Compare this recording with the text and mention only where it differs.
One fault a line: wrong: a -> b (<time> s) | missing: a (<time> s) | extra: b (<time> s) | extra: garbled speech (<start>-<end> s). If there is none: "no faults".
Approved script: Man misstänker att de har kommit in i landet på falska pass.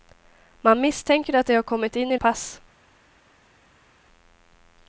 missing: landet på falska (2.2 s)